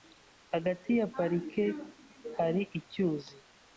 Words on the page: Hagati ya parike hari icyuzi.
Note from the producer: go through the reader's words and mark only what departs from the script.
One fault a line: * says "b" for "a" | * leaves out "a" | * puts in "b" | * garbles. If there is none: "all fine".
all fine